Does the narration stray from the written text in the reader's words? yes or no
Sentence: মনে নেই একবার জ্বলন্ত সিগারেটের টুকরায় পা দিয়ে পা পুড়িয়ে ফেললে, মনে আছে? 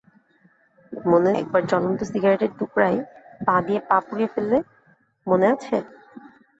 yes